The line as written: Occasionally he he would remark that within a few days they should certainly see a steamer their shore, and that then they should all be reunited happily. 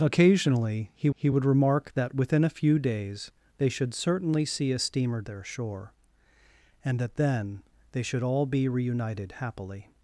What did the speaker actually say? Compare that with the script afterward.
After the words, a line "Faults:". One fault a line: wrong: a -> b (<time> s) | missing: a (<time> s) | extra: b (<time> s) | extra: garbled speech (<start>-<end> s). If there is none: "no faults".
Occasionally he he would remark that within a few days they should certainly see a steamer their shore, and that then they should all be reunited happily.
Faults:
no faults